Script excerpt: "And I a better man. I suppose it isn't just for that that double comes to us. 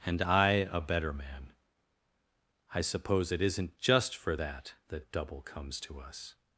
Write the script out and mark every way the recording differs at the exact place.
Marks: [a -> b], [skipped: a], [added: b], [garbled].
"And I a better man. I suppose it isn't just for that that double comes to us.